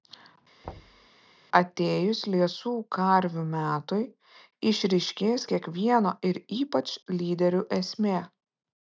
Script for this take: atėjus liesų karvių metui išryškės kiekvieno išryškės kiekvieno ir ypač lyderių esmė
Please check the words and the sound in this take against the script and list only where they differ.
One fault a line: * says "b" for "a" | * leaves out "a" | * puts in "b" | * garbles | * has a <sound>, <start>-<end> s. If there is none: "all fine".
* has a thud, 0.6-1.1 s
* leaves out "išryškės kiekvieno"